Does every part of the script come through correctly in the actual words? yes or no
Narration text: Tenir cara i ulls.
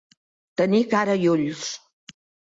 yes